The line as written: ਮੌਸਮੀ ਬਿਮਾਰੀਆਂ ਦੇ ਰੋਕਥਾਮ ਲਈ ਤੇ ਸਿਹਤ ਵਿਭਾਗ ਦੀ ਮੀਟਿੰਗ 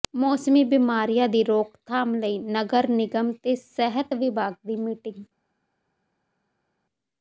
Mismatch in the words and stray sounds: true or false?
true